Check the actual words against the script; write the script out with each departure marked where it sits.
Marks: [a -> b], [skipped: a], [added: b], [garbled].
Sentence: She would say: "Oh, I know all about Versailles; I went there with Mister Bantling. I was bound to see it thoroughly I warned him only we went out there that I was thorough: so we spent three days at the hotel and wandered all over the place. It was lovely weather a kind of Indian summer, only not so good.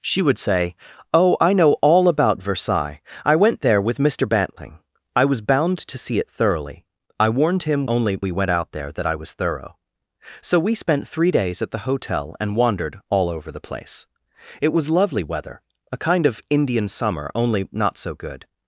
She would say: "Oh, I know all about Versailles; I went there with Mister Bantling. I was bound to see it thoroughly I warned him only we went out there that I was thorough: so we spent three days at the hotel and wandered all over the place. It was lovely weather a kind of Indian summer, only not so good.